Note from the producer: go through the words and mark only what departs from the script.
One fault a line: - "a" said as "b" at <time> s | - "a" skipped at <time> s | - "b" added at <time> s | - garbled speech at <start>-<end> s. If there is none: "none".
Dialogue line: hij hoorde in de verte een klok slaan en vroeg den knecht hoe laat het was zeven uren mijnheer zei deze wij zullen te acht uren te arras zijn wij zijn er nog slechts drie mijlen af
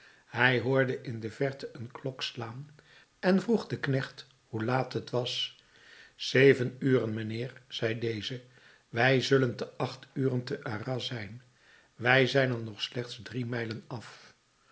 none